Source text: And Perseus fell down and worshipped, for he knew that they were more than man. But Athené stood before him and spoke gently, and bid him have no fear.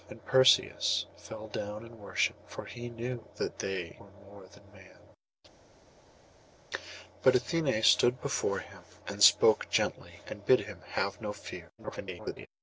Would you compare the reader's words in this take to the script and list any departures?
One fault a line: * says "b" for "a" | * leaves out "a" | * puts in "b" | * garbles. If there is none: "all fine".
* garbles